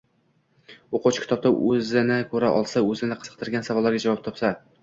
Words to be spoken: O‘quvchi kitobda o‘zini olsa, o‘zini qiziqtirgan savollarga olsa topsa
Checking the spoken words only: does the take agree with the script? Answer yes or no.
no